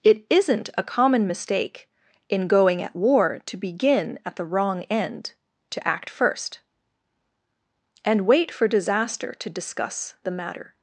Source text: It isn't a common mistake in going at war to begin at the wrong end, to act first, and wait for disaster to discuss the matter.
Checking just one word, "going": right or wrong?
right